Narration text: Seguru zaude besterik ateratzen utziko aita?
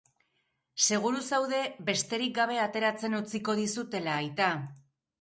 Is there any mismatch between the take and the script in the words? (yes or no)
yes